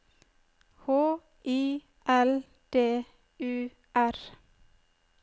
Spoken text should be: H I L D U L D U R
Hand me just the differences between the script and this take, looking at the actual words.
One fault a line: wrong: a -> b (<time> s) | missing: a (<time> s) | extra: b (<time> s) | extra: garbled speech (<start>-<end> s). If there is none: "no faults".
missing: L D U (3.7 s)